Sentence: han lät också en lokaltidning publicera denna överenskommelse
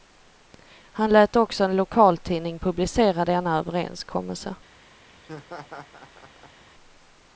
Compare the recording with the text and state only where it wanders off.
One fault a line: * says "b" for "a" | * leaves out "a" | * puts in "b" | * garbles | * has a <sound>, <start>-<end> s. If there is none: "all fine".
* has a laugh, 5.1-6.6 s